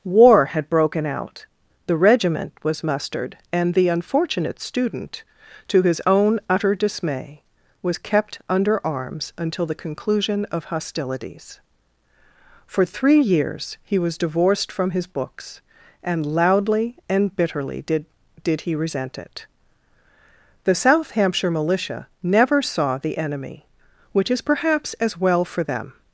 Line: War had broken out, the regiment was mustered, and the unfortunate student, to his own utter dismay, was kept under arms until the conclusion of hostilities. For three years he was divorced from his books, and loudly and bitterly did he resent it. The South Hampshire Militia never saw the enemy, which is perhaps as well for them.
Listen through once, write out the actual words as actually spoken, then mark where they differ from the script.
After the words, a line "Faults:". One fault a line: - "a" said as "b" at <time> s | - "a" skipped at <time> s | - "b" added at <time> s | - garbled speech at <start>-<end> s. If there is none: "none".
War had broken out, the regiment was mustered, and the unfortunate student, to his own utter dismay, was kept under arms until the conclusion of hostilities. For three years he was divorced from his books, and loudly and bitterly did did he resent it. The South Hampshire Militia never saw the enemy, which is perhaps as well for them.
Faults:
- "did" added at 18.4 s